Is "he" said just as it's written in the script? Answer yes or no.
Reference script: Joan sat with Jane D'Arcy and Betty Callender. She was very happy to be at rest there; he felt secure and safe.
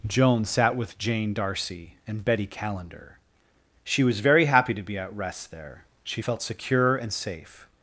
no